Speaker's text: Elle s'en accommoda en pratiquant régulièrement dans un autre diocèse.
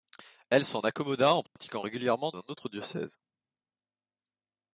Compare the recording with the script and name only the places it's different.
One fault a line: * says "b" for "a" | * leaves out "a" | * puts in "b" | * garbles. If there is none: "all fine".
* leaves out "dans"